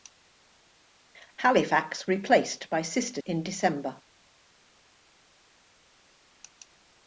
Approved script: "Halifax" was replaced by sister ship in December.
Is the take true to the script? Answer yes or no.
no